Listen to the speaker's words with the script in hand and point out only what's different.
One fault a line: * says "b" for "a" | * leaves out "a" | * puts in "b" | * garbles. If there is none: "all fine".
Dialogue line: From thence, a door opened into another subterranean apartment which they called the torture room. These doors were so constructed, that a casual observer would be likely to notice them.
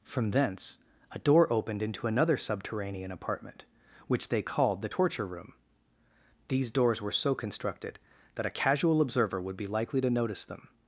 all fine